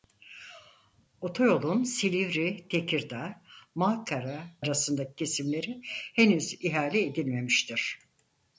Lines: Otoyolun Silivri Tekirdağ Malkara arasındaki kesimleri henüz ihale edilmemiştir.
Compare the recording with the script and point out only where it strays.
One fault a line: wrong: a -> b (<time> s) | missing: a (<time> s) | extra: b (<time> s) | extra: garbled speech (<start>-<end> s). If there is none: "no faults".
no faults